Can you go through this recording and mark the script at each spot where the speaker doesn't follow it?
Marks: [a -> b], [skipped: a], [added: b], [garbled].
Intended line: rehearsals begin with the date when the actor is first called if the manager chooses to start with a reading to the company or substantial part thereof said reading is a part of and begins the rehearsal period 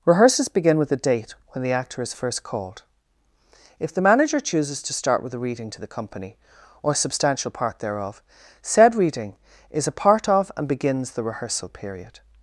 rehearsals begin with the date when the actor is first called if the manager chooses to start with a reading to the company or substantial part thereof said reading is a part of and begins the rehearsal period